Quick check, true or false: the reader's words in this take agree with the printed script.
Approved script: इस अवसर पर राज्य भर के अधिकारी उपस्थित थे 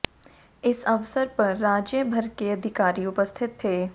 true